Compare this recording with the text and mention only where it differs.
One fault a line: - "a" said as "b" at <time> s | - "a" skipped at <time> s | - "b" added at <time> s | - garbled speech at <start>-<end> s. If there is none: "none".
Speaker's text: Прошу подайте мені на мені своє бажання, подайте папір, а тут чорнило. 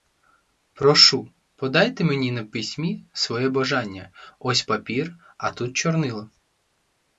- "мені" said as "письмі" at 2.4 s
- "подайте" said as "ось" at 4.4 s